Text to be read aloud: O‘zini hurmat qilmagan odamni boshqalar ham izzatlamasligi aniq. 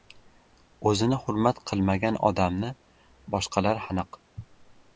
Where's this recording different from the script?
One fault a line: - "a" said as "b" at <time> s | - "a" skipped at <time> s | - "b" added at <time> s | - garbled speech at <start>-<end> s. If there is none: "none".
- "ham izzatlamasligi" skipped at 3.9 s